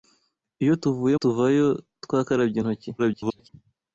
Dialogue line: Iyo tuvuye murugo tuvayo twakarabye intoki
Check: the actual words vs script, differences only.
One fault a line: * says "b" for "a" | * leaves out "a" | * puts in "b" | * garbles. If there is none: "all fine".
* leaves out "murugo"
* garbles